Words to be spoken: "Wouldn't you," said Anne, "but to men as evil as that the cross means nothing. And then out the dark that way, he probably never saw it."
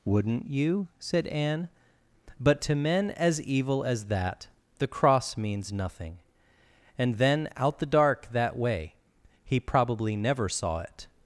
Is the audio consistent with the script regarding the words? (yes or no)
yes